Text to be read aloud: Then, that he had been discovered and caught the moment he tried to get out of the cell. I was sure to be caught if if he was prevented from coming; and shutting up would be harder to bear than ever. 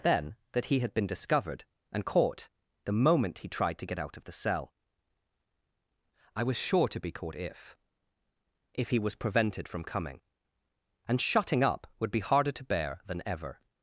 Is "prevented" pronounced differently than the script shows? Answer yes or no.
no